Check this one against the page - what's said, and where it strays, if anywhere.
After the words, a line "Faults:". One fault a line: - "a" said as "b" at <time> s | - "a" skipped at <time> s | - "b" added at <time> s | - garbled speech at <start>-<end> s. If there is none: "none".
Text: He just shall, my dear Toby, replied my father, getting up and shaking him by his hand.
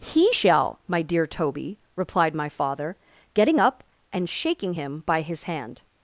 He shall, my dear Toby, replied my father, getting up and shaking him by his hand.
Faults:
- "just" skipped at 0.3 s